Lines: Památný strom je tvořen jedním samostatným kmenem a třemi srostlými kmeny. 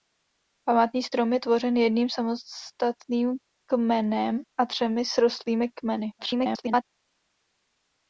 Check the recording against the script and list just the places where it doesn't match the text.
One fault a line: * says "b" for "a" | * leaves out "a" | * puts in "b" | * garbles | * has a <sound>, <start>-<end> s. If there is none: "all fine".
* garbles